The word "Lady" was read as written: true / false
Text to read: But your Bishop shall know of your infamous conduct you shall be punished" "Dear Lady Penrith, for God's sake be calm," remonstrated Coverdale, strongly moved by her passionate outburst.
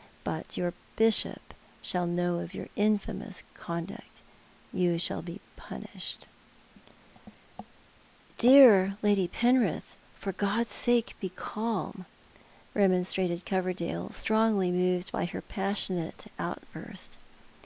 true